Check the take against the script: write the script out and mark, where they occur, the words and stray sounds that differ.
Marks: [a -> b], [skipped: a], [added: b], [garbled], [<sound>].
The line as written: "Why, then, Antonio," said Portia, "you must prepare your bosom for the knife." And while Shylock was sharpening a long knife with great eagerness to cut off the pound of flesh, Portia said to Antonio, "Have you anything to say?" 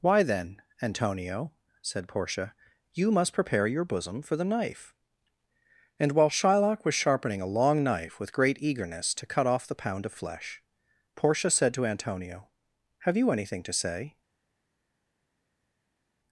"Why, then, Antonio," said Portia, "you must prepare your bosom for the knife." And while Shylock was sharpening a long knife with great eagerness to cut off the pound of flesh, Portia said to Antonio, "Have you anything to say?"